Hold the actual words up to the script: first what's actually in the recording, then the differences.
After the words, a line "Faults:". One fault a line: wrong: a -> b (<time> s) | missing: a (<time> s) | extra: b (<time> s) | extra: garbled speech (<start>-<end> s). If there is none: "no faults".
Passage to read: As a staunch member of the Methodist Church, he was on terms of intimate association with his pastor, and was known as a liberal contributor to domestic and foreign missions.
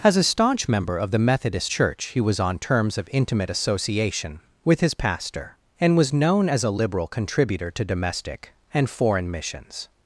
As a staunch member of the Methodist Church, he was on terms of intimate association with his pastor, and was known as a liberal contributor to domestic and foreign missions.
Faults:
no faults